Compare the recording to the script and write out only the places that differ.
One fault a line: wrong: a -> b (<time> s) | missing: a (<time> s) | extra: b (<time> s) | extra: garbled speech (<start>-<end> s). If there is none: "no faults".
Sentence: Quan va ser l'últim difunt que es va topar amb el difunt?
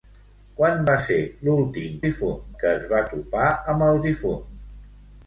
no faults